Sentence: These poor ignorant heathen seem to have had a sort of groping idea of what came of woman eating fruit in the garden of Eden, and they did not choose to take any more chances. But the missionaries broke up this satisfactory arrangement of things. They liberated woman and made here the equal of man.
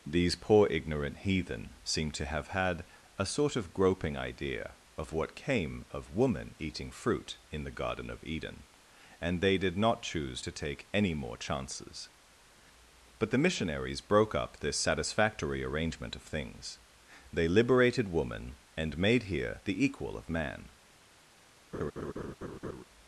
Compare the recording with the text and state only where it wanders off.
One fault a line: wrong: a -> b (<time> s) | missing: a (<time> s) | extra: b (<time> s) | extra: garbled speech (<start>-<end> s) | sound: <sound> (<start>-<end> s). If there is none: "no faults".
sound: laugh (21.7-22.8 s)